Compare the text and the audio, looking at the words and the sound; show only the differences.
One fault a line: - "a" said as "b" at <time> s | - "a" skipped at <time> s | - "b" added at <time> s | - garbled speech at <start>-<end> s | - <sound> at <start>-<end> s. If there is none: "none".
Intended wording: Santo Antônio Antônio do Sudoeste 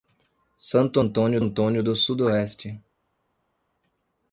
none